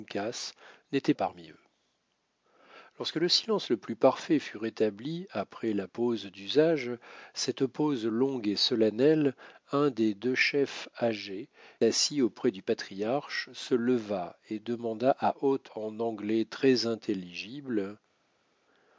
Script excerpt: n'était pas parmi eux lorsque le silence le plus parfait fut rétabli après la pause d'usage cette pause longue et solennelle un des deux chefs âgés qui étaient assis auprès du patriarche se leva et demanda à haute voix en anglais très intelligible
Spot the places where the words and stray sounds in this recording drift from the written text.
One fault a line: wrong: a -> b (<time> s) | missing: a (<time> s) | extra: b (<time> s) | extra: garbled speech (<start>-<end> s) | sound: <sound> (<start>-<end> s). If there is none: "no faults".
missing: pas (1.1 s)
missing: qui étaient (11.5 s)
missing: voix (15.7 s)